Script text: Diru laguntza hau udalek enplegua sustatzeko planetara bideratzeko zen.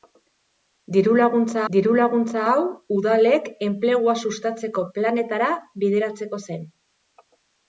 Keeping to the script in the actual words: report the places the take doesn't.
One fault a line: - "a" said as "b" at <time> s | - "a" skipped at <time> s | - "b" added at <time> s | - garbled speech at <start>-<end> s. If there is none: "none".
- "diru laguntza" added at 1.7 s